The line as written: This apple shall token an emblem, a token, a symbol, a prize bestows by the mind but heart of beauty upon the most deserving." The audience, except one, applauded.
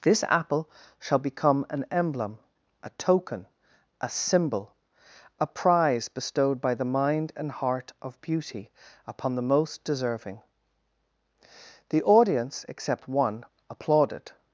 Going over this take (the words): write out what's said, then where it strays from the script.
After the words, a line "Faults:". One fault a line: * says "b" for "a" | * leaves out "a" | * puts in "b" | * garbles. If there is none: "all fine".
This apple shall become an emblem, a token, a symbol, a prize bestowed by the mind and heart of beauty upon the most deserving." The audience, except one, applauded.
Faults:
* says "become" for "token"
* says "bestowed" for "bestows"
* says "and" for "but"